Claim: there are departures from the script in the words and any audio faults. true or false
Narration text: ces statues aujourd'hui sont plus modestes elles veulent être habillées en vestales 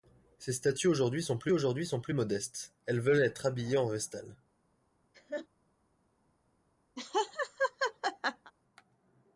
true